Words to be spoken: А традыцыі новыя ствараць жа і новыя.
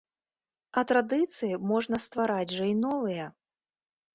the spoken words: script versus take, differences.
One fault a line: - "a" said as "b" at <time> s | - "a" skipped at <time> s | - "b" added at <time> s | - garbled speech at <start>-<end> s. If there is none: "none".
- "новыя" said as "можна" at 1.7 s